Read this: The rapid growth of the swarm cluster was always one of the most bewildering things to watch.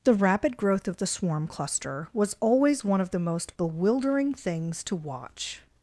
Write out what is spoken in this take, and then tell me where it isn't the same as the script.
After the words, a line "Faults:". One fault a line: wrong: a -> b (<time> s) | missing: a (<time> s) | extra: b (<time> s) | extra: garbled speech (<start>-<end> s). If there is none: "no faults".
The rapid growth of the swarm cluster was always one of the most bewildering things to watch.
Faults:
no faults